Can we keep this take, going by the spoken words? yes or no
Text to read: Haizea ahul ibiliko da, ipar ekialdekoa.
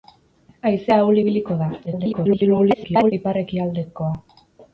no